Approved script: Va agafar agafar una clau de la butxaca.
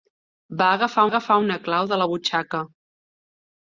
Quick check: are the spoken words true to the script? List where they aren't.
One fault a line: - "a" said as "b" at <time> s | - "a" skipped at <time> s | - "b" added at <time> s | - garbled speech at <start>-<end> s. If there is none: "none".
none